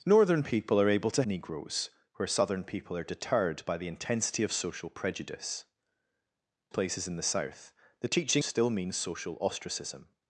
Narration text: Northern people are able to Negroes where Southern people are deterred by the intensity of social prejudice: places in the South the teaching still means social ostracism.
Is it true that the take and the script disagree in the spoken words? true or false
false